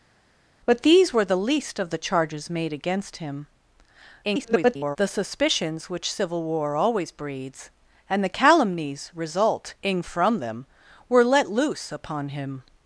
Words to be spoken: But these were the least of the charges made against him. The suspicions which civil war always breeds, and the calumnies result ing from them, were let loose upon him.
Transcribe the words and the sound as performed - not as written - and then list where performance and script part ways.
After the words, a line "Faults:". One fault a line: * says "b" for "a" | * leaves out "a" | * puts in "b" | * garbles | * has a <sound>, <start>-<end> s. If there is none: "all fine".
But these were the least of the charges made against him. [garbled] The suspicions which civil war always breeds, and the calumnies result ing from them, were let loose upon him.
Faults:
* garbles